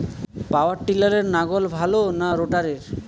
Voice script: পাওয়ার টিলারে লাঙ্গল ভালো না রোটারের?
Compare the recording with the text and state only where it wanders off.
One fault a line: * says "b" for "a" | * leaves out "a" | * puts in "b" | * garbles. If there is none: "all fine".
all fine